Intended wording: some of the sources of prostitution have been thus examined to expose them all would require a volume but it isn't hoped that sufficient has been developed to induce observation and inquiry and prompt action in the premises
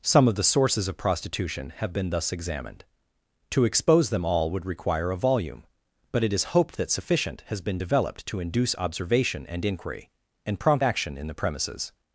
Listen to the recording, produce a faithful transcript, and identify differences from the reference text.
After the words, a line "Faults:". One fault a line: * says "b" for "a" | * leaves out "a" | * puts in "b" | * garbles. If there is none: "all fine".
some of the sources of prostitution have been thus examined to expose them all would require a volume but it is hoped that sufficient has been developed to induce observation and inquiry and prompt action in the premises
Faults:
* says "is" for "isn't"